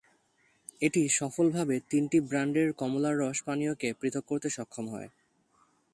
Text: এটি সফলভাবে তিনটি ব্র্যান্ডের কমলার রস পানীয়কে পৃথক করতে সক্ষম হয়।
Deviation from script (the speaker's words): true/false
false